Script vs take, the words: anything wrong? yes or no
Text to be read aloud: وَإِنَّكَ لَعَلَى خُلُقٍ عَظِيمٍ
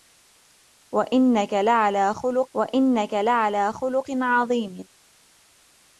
yes